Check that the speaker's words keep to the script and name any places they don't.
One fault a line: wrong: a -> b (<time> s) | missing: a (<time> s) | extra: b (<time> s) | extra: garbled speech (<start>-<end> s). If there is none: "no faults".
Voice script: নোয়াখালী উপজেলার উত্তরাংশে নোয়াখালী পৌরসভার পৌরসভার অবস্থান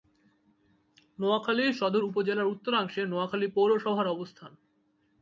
extra: সদর (1.7 s)
missing: পৌরসভার (4.1 s)